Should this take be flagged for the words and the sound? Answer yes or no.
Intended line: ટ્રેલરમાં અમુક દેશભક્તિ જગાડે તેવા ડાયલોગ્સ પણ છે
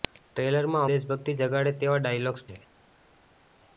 yes